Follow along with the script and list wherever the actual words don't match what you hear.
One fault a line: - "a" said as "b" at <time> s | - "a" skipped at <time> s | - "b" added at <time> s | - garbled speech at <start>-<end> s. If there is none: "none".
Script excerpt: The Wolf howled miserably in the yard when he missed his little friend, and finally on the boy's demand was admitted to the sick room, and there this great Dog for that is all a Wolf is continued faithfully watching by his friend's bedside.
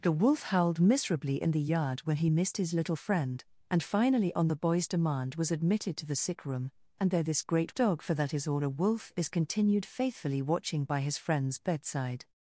none